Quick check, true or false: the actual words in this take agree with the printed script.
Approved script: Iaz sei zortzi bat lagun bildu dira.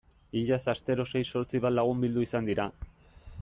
false